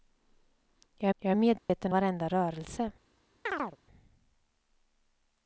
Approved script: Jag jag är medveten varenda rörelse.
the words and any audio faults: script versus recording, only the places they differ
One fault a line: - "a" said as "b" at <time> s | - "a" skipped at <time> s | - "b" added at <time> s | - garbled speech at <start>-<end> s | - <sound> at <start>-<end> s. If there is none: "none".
- dropout at 1.6-1.7 s
- chirp at 3.5-3.8 s